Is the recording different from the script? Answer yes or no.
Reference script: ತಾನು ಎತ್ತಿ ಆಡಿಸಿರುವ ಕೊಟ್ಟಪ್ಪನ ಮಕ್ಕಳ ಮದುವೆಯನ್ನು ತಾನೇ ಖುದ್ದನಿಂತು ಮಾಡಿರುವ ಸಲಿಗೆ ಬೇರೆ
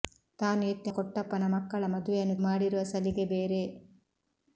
yes